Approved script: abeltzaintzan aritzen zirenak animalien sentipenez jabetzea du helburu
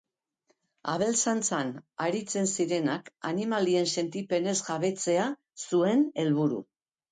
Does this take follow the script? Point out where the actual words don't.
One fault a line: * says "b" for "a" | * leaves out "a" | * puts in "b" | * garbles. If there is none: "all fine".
* says "zuen" for "du"